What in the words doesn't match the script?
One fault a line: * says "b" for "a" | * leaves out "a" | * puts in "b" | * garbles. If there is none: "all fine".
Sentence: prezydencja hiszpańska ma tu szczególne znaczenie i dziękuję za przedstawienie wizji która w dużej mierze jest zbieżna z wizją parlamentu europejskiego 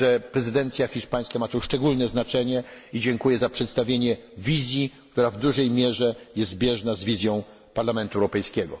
all fine